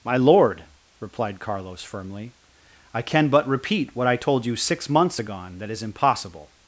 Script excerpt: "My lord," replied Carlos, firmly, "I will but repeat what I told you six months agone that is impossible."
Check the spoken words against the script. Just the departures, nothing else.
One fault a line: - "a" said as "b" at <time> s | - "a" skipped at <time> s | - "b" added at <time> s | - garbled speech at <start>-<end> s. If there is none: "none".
- "will" said as "can" at 3.0 s